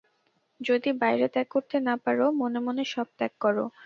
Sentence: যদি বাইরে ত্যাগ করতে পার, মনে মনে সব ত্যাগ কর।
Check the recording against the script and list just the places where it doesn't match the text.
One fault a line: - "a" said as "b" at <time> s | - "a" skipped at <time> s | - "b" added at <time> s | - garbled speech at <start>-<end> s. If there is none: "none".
- "না" added at 1.8 s